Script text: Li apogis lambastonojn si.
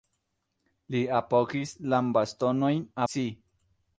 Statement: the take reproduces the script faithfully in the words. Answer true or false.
true